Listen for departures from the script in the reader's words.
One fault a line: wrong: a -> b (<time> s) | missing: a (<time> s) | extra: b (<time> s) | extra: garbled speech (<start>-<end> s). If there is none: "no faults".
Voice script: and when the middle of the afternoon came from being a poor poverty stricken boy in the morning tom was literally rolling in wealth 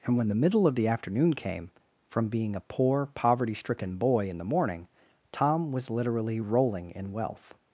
no faults